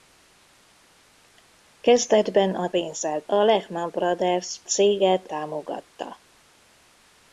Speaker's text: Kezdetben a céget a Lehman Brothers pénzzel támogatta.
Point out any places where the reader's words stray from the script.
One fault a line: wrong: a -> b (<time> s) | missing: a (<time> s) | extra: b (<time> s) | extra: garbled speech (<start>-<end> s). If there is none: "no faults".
wrong: céget -> pénzzel (2.7 s)
wrong: pénzzel -> céget (4.6 s)